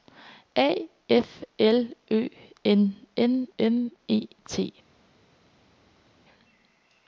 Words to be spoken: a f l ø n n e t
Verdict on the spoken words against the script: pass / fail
fail